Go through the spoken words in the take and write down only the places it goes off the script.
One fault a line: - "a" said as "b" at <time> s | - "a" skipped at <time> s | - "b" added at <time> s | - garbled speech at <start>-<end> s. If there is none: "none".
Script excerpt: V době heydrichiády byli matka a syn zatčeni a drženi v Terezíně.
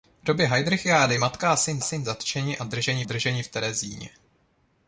- "byli" skipped at 1.2 s
- "syn" added at 1.8 s
- "drženi" added at 3.0 s